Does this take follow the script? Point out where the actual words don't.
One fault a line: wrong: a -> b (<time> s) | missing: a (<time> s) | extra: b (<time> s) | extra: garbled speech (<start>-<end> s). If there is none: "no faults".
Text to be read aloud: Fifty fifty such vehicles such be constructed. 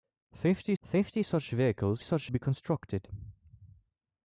no faults